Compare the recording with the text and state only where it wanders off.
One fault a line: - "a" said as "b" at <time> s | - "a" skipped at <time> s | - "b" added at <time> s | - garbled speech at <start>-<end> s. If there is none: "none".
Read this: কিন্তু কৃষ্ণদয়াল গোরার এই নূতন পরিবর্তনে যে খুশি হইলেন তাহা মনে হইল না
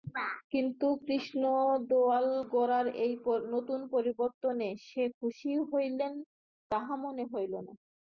none